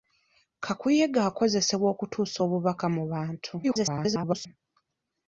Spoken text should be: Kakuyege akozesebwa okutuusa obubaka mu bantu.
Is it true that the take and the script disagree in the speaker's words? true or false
true